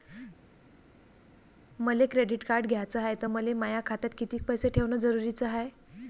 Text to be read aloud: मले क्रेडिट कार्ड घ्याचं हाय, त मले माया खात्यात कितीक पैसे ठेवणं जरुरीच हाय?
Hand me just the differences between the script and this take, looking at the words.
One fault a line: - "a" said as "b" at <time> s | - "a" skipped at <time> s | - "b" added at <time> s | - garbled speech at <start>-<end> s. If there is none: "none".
none